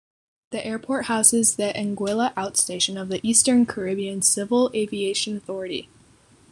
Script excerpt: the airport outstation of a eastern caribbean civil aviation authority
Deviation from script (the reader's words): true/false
true